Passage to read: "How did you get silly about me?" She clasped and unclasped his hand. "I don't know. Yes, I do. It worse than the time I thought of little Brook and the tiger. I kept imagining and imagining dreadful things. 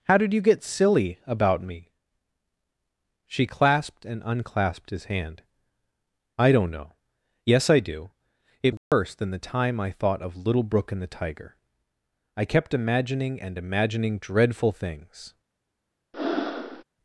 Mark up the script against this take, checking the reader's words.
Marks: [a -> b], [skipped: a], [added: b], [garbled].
"How did you get silly about me?" She clasped and unclasped his hand. "I don't know. Yes, I do. It worse than the time I thought of little Brook and the tiger. I kept imagining and imagining dreadful things.